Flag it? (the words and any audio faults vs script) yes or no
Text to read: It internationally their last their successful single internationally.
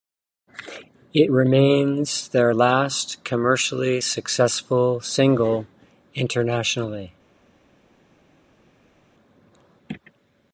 yes